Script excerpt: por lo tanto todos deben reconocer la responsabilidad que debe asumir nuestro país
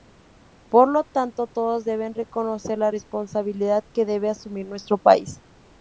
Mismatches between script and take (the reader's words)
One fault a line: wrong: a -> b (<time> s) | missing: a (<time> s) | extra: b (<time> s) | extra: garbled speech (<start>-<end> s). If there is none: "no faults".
no faults